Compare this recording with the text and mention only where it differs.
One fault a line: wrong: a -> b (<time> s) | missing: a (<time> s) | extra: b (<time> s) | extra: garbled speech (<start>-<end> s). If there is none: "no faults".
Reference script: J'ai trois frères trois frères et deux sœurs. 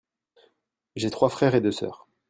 missing: trois frères (1.6 s)